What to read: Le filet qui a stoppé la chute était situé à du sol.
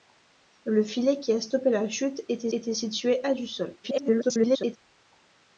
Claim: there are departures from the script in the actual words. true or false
true